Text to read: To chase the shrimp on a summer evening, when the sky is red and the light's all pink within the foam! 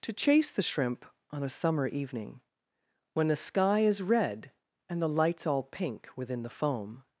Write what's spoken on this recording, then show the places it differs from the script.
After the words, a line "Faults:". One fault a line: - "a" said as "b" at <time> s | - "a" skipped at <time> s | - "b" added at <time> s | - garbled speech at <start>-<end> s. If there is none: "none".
To chase the shrimp on a summer evening, when the sky is red and the light's all pink within the foam!
Faults:
none